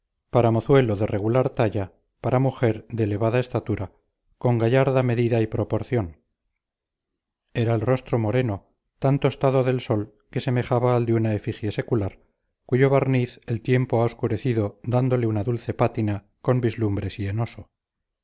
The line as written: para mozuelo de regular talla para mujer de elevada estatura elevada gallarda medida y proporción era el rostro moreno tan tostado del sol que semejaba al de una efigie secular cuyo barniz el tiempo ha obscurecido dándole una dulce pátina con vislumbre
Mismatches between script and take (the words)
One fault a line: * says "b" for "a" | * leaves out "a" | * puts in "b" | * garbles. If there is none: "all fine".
* says "con" for "elevada"